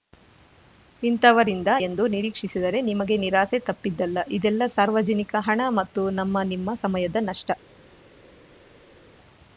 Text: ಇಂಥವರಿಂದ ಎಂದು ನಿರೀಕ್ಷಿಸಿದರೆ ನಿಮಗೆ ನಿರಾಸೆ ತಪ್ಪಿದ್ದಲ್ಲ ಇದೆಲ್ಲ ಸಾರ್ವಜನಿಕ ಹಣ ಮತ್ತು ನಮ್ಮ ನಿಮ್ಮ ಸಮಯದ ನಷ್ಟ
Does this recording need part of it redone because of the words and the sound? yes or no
no